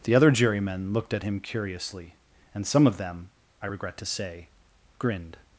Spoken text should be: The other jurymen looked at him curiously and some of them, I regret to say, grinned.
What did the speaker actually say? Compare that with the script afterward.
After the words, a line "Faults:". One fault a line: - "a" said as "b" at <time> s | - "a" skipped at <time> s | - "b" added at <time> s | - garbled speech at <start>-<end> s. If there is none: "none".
The other jurymen looked at him curiously and some of them, I regret to say, grinned.
Faults:
none